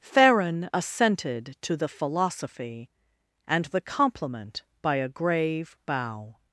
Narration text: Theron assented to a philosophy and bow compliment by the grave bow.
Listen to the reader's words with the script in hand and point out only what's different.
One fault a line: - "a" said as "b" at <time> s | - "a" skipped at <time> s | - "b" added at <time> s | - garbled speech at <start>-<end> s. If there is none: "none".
- "a" said as "the" at 1.8 s
- "bow" said as "the" at 3.7 s
- "the" said as "a" at 5.0 s